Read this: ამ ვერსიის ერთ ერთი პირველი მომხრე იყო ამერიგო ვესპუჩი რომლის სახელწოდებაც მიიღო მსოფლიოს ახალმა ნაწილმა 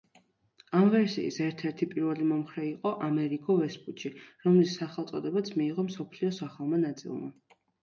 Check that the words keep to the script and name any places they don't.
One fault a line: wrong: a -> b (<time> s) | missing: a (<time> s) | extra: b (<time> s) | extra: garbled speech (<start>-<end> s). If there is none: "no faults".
no faults